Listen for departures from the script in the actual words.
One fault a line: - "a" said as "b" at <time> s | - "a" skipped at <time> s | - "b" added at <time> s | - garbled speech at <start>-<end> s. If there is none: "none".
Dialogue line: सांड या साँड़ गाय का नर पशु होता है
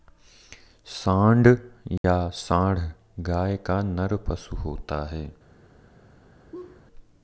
none